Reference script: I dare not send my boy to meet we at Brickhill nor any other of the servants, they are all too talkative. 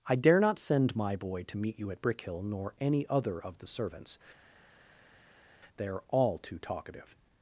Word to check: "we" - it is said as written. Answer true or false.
false